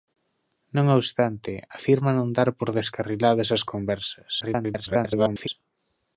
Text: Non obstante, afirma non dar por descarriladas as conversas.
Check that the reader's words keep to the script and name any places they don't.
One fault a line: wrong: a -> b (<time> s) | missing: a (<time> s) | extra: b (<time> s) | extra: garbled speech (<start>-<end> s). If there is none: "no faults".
extra: garbled speech (4.4-5.5 s)